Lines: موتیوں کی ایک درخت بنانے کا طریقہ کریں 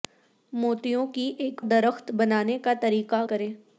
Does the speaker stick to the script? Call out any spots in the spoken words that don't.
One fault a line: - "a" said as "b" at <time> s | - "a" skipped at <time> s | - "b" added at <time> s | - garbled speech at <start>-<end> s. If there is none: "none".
none